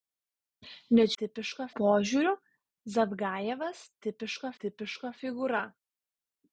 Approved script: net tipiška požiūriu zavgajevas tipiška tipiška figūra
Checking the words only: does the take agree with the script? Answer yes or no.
yes